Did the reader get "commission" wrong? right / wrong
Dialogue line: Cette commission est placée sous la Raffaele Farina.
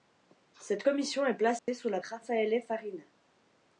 right